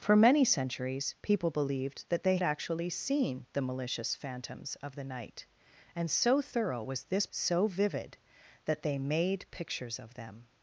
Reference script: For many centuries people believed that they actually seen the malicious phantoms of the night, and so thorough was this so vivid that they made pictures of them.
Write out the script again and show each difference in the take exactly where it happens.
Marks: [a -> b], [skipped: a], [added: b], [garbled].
For many centuries people believed that they actually seen the malicious phantoms of the night, and so thorough was this so vivid that they made pictures of them.